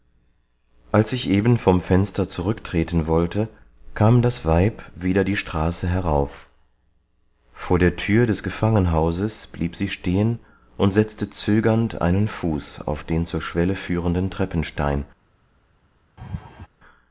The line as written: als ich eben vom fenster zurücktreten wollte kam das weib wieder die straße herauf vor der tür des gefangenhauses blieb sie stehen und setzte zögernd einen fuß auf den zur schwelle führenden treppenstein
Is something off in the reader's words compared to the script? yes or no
no